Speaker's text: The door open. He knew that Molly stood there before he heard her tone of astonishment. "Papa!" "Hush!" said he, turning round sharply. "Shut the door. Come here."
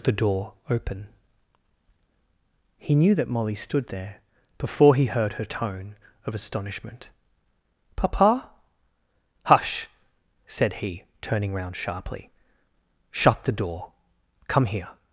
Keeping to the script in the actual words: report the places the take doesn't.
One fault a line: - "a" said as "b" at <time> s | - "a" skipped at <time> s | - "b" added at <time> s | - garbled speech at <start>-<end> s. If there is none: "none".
none